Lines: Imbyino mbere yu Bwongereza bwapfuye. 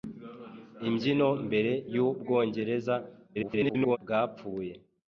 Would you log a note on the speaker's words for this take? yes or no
yes